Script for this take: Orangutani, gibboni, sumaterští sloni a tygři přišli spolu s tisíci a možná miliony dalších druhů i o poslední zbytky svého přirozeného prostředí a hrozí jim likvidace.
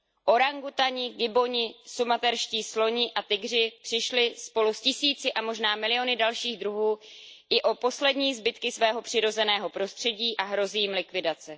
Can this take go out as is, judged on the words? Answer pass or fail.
pass